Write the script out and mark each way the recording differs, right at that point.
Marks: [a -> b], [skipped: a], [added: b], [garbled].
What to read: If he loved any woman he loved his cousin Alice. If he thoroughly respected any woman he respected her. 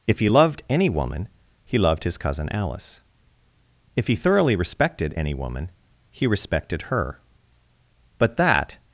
If he loved any woman he loved his cousin Alice. If he thoroughly respected any woman he respected her. [added: But that]